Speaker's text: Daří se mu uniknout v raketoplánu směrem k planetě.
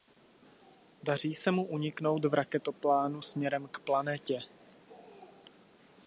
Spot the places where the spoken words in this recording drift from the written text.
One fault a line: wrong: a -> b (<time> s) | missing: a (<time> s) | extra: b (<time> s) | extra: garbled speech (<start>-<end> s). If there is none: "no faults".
no faults